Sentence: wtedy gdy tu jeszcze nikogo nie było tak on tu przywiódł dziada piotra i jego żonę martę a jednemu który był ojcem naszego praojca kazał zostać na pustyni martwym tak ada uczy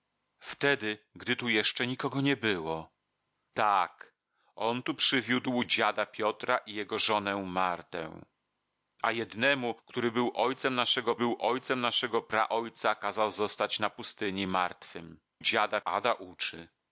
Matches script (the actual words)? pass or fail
fail